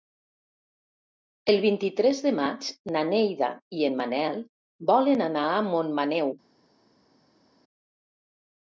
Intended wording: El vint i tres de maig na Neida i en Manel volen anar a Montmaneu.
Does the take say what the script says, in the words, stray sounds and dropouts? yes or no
yes